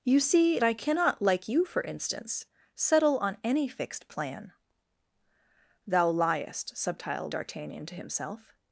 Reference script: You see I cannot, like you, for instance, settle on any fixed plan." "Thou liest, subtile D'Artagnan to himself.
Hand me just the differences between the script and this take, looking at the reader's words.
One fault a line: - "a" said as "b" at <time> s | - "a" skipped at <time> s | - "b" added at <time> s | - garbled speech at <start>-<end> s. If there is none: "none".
none